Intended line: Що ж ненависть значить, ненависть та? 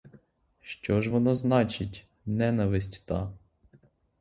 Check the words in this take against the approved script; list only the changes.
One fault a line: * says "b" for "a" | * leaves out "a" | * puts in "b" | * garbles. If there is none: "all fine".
* says "воно" for "ненависть"